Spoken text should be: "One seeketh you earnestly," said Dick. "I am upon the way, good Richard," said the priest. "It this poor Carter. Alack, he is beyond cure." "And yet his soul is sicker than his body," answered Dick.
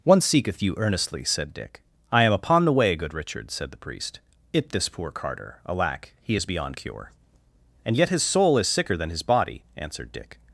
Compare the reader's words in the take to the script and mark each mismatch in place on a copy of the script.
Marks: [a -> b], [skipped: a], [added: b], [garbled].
"One seeketh you earnestly," said Dick. "I am upon the way, good Richard," said the priest. "It this poor Carter. Alack, he is beyond cure." "And yet his soul is sicker than his body," answered Dick.